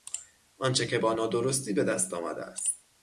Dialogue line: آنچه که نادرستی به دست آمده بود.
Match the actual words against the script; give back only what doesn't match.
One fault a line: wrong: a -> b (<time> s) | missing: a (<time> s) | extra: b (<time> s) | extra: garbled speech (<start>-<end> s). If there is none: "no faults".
extra: با (1.0 s)
wrong: بود -> است (2.4 s)